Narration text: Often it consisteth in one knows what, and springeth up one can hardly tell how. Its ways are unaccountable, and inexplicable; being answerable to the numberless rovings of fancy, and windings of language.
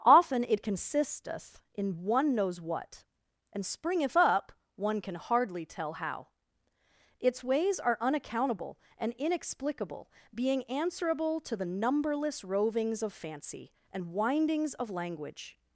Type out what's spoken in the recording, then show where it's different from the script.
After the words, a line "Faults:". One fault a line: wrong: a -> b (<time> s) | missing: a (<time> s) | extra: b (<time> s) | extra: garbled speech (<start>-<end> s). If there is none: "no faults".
Often it consisteth in one knows what, and springeth up one can hardly tell how. Its ways are unaccountable, and inexplicable; being answerable to the numberless rovings of fancy, and windings of language.
Faults:
no faults